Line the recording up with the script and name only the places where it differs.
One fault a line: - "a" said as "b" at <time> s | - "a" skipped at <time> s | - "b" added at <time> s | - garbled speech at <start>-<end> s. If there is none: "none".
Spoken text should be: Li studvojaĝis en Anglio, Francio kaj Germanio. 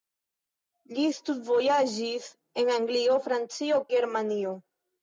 - "kaj" skipped at 3.8 s